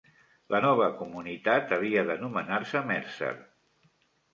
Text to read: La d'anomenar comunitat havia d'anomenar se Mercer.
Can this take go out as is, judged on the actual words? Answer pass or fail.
fail